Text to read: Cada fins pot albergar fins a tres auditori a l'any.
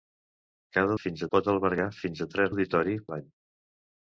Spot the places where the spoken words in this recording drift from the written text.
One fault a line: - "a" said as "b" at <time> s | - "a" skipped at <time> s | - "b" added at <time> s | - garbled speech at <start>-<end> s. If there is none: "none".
none